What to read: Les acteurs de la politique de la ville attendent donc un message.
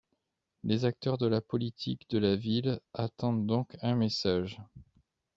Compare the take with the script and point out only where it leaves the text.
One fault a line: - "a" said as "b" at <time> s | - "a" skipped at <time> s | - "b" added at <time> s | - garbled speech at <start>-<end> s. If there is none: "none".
none